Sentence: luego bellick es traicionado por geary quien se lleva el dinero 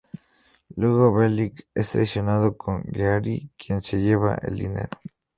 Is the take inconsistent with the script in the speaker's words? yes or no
no